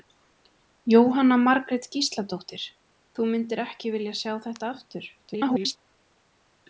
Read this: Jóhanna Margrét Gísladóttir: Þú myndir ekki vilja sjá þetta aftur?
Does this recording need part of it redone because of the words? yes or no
yes